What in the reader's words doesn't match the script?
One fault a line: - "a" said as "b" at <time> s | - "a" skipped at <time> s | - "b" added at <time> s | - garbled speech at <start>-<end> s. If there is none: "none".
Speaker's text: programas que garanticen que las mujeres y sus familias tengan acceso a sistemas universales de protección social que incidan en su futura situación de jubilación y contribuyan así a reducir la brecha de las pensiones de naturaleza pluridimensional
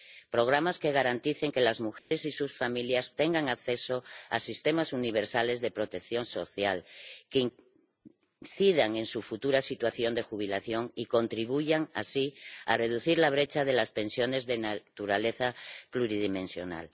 none